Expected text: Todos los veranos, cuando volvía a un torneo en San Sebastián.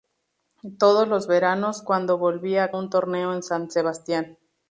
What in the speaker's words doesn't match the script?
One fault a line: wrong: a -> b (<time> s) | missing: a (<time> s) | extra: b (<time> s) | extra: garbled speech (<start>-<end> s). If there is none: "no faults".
no faults